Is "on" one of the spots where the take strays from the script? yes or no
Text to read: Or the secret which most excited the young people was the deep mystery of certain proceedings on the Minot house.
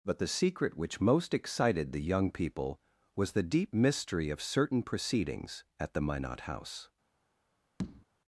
yes